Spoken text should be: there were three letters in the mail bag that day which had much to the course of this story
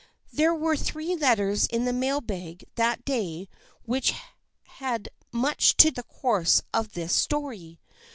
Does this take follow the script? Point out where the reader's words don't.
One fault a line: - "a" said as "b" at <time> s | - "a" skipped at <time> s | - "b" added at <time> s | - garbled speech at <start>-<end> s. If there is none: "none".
none